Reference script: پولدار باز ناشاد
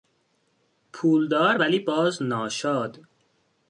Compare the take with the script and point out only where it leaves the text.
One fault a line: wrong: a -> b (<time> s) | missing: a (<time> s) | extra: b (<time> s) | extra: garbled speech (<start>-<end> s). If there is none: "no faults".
extra: ولی (1.5 s)